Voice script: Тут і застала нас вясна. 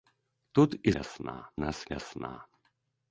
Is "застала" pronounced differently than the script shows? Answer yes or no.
yes